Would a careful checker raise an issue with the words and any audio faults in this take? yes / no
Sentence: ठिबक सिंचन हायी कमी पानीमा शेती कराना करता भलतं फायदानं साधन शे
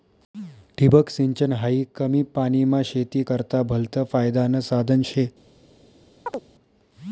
yes